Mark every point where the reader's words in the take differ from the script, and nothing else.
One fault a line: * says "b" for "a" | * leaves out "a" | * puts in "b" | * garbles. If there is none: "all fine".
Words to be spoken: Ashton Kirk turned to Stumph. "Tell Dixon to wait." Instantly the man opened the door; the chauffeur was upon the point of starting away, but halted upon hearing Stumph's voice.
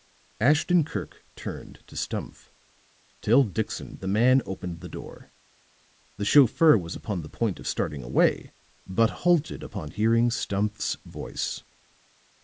* leaves out "to wait Instantly"